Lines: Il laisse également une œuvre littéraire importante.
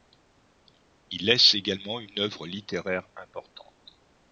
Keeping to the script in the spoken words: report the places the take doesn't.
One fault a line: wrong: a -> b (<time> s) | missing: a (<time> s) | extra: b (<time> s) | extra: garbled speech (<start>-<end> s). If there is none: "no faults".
no faults